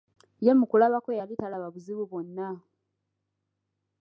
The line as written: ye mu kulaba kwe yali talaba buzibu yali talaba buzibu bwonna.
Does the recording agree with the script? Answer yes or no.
no